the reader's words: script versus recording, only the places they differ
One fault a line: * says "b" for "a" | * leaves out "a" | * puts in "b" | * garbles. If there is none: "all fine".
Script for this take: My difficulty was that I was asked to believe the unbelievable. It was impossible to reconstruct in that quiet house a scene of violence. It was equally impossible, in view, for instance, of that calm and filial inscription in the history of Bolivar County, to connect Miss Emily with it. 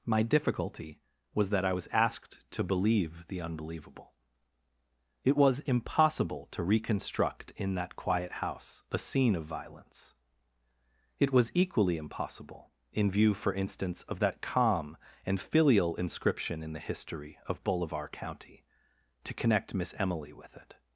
all fine